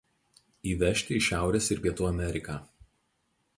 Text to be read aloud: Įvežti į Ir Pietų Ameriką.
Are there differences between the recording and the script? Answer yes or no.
yes